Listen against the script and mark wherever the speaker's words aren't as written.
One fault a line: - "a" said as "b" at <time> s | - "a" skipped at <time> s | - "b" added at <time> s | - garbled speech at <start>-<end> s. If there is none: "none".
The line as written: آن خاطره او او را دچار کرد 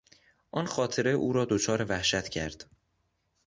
- "او" skipped at 1.3 s
- "وحشت" added at 1.9 s